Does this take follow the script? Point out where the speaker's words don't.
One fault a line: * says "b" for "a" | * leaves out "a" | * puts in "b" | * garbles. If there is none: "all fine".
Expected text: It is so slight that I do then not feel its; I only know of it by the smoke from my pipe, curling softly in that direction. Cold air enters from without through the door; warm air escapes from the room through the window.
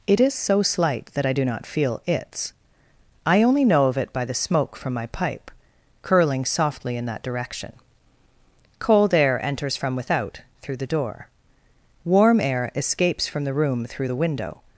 * leaves out "then"